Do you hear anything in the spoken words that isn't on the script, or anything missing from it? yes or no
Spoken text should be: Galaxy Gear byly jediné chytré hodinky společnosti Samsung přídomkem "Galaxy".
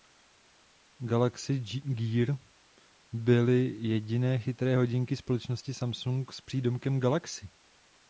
yes